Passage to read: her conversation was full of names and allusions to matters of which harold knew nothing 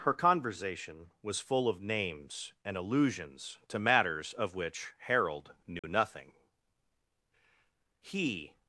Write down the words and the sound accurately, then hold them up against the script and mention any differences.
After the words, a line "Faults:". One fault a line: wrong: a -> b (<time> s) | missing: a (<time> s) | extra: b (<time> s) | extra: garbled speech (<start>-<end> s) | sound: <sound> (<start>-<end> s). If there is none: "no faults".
her conversation was full of names and allusions to matters of which harold knew nothing he
Faults:
sound: dropout (5.8-5.8 s)
extra: he (8.0 s)